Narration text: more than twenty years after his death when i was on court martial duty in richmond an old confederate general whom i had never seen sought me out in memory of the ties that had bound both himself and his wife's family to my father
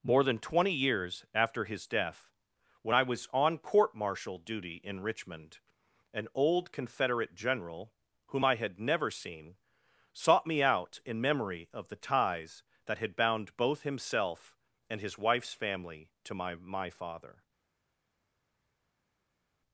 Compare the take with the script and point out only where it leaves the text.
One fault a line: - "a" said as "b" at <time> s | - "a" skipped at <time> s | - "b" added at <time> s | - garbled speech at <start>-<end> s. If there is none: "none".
- "my" added at 16.5 s